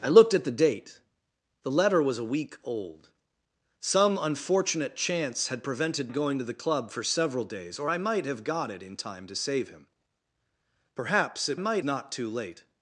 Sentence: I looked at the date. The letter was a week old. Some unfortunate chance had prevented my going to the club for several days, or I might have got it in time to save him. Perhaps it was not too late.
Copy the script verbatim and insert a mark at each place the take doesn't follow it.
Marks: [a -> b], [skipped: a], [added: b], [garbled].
I looked at the date. The letter was a week old. Some unfortunate chance had prevented [skipped: my] going to the club for several days, or I might have got it in time to save him. Perhaps it [was -> might] not too late.